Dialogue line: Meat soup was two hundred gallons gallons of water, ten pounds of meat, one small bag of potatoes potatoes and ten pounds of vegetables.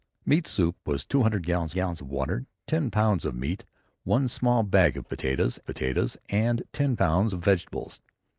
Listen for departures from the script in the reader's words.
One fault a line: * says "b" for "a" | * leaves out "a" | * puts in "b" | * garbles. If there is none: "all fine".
all fine